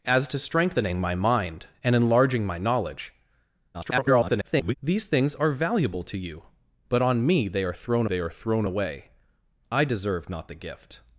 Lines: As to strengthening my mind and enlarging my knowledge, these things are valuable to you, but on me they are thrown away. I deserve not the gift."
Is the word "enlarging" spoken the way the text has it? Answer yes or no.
yes